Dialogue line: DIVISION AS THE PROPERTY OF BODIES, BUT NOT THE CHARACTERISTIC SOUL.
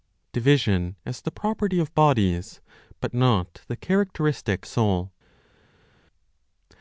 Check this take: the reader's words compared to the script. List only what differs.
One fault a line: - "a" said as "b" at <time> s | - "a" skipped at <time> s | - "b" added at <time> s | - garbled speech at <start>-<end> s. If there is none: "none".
none